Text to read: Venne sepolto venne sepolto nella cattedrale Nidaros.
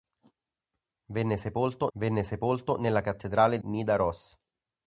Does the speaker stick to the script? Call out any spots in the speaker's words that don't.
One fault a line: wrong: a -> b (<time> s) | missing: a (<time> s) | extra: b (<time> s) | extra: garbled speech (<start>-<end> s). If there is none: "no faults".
no faults